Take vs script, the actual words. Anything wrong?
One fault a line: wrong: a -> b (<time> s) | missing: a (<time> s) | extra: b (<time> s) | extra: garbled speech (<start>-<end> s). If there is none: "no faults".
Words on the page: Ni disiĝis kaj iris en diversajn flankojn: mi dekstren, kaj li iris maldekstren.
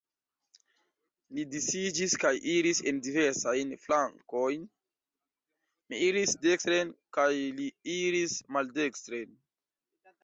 extra: iris (6.1 s)